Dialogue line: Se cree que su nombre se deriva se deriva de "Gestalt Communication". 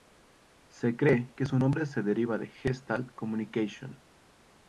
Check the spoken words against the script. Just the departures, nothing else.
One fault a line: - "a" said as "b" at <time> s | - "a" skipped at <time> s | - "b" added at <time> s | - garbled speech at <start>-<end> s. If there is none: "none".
- "se deriva" skipped at 2.4 s